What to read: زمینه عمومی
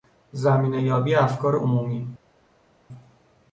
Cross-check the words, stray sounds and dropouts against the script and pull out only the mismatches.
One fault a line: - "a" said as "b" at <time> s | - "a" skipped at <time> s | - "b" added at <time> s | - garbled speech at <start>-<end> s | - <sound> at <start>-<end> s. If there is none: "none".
- "یابی افکار" added at 0.8 s